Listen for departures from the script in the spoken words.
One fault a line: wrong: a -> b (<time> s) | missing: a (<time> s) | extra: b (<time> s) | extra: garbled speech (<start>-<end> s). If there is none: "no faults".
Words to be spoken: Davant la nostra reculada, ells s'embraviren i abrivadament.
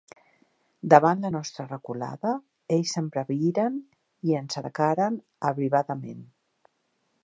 extra: ens atacaren (4.4 s)